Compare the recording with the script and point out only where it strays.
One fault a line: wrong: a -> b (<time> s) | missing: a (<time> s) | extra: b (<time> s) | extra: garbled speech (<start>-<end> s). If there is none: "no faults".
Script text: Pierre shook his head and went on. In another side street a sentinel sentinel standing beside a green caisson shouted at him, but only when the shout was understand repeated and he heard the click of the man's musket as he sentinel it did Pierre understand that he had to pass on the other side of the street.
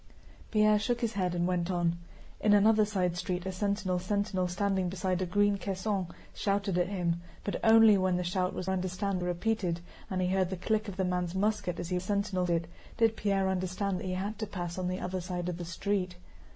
no faults